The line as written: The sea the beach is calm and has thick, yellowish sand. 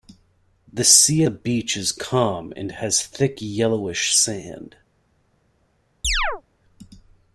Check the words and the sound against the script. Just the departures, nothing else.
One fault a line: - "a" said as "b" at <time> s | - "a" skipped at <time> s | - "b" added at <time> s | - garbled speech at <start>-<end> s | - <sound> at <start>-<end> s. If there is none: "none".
- chirp at 6.0-6.4 s